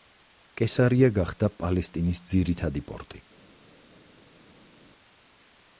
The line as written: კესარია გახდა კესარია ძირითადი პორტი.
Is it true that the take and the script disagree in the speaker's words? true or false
true